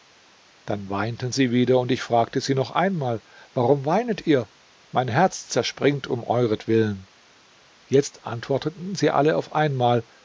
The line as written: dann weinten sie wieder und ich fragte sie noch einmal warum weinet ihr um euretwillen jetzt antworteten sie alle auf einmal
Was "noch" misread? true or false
false